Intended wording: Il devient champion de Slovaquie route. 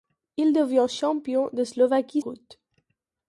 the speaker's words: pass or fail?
pass